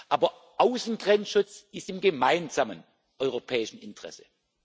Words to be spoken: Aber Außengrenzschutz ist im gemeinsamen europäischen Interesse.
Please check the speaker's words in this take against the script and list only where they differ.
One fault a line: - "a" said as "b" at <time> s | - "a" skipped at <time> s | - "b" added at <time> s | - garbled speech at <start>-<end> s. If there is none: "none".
none